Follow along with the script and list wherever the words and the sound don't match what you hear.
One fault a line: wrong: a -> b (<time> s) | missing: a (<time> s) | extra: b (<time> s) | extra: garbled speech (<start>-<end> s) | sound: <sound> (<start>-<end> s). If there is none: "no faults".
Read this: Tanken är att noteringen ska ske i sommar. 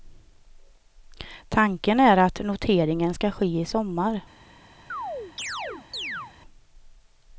sound: chirp (4.9-6.3 s)